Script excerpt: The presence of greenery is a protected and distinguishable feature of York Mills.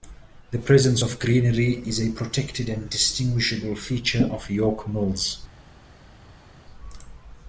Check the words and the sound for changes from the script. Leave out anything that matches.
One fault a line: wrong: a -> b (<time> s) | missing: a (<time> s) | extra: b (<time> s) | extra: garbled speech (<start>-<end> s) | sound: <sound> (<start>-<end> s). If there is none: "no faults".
no faults